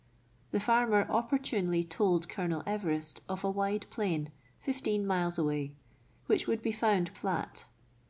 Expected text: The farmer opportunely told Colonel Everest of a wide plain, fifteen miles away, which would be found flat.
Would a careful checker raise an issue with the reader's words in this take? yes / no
no